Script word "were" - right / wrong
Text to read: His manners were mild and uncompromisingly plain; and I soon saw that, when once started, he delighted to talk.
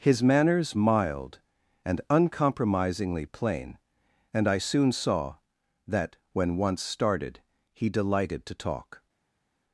wrong